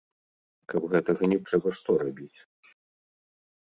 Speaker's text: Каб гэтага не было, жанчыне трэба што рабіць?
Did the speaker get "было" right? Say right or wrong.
wrong